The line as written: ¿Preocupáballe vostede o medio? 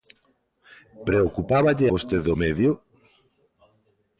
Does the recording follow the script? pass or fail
pass